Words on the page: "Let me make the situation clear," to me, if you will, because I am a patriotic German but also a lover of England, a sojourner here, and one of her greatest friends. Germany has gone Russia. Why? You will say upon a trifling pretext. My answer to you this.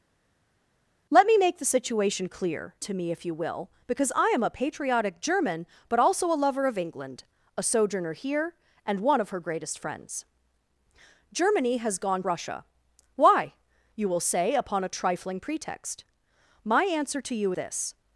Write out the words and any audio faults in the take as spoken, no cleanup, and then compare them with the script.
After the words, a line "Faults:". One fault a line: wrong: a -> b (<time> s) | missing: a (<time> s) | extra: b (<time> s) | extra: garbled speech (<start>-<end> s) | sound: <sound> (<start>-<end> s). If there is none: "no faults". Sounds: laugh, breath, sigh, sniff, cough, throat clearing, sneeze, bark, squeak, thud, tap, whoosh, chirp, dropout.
"Let me make the situation clear," to me, if you will, because I am a patriotic German but also a lover of England, a sojourner here, and one of her greatest friends. Germany has gone Russia. Why? You will say upon a trifling pretext. My answer to you this.
Faults:
no faults